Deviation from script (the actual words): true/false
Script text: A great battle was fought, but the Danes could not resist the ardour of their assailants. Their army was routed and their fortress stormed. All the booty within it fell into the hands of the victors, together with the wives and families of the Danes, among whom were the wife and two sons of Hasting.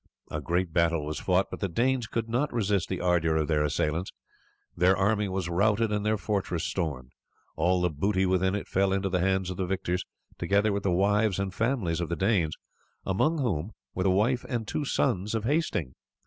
false